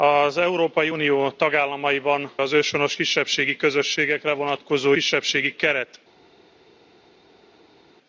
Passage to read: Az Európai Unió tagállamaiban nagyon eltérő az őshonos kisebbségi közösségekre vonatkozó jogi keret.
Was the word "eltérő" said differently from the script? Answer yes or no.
yes